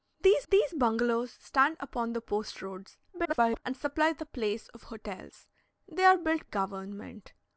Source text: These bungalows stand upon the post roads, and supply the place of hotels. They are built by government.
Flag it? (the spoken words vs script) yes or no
yes